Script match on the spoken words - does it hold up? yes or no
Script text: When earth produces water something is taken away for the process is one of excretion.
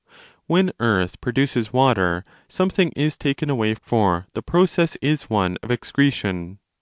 yes